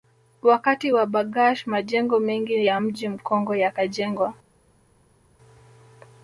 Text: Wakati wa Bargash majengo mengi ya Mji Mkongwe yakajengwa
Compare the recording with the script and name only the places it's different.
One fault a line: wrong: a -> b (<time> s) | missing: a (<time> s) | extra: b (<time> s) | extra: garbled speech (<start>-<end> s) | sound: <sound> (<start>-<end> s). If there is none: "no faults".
no faults